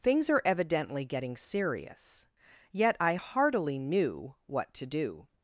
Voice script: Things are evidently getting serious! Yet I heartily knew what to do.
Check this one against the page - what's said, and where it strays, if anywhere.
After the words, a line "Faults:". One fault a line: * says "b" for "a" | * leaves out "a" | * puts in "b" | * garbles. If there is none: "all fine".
Things are evidently getting serious! Yet I heartily knew what to do.
Faults:
all fine